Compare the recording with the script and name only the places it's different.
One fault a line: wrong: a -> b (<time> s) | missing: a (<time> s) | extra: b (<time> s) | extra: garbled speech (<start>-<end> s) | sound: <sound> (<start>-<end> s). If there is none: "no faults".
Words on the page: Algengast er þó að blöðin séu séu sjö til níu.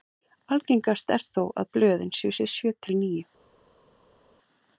no faults